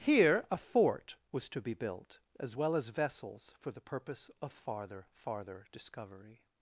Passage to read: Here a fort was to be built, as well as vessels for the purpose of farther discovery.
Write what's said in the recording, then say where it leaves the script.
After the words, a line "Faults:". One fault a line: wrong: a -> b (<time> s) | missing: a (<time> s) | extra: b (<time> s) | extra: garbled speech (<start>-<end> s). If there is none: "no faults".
Here a fort was to be built, as well as vessels for the purpose of farther farther discovery.
Faults:
extra: farther (5.1 s)